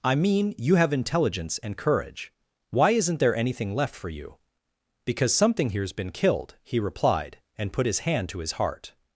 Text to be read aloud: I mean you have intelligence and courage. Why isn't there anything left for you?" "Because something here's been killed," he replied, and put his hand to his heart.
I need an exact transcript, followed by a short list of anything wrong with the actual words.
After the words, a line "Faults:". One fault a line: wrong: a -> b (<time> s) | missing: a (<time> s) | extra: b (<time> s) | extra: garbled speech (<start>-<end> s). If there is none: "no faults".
I mean you have intelligence and courage. Why isn't there anything left for you?" "Because something here's been killed," he replied, and put his hand to his heart.
Faults:
no faults